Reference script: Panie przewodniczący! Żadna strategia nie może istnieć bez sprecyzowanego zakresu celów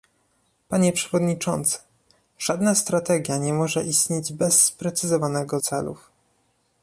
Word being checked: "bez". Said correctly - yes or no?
yes